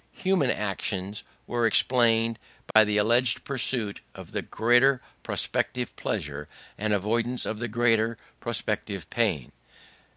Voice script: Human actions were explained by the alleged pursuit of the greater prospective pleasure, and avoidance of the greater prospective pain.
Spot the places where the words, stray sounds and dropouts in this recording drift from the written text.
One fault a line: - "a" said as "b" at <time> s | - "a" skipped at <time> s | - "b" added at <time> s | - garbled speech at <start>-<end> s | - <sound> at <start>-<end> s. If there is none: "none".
- dropout at 2.7-2.8 s